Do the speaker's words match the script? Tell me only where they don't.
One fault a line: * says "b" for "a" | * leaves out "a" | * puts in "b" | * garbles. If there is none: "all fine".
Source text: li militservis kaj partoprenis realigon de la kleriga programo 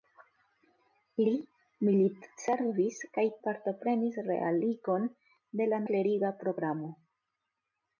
all fine